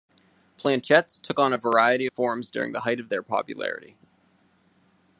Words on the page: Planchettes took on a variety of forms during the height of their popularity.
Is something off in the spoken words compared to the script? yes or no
no